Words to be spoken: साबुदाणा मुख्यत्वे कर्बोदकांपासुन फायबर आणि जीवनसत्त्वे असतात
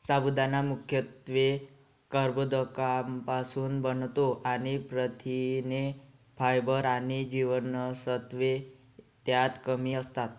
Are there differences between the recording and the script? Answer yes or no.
yes